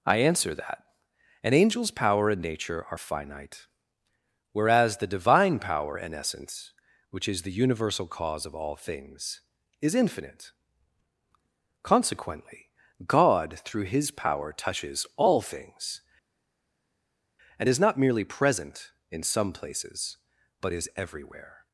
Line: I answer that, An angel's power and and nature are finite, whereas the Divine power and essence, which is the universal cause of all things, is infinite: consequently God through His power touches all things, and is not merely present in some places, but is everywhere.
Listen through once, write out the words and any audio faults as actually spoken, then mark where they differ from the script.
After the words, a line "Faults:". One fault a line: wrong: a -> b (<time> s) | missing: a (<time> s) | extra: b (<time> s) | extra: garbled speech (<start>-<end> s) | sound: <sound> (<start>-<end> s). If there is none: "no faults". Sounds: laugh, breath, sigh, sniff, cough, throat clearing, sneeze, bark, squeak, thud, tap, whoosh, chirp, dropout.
I answer that, An angel's power and nature are finite, whereas the Divine power and essence, which is the universal cause of all things, is infinite: consequently God through His power touches all things, and is not merely present in some places, but is everywhere.
Faults:
missing: and (2.4 s)